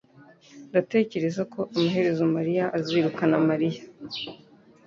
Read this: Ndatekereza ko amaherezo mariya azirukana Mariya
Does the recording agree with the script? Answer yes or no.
yes